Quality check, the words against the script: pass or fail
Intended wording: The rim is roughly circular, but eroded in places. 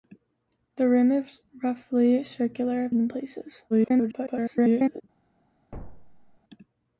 fail